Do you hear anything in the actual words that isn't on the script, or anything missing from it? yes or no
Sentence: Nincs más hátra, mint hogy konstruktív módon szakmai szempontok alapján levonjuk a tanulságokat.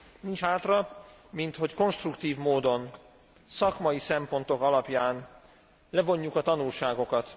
yes